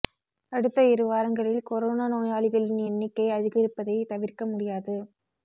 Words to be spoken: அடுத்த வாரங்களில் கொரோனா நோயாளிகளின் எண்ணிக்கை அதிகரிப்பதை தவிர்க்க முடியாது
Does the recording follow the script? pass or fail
fail